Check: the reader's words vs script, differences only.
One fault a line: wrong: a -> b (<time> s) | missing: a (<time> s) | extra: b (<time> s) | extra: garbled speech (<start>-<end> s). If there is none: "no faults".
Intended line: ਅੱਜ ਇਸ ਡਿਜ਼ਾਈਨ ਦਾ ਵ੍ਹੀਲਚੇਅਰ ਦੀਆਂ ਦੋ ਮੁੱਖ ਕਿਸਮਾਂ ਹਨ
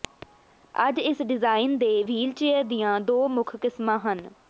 wrong: ਦਾ -> ਦੇ (1.8 s)